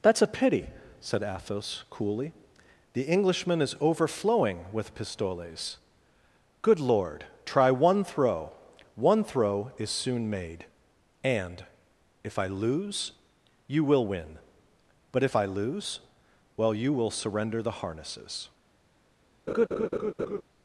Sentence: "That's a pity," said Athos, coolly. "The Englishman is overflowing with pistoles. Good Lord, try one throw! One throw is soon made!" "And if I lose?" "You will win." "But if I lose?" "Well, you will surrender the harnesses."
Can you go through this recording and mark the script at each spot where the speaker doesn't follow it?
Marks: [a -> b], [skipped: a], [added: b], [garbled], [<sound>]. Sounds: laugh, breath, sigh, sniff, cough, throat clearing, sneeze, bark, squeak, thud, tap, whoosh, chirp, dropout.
"That's a pity," said Athos, coolly. "The Englishman is overflowing with pistoles. Good Lord, try one throw! One throw is soon made!" "And if I lose?" "You will win." "But if I lose?" "Well, you will surrender the harnesses." [laugh]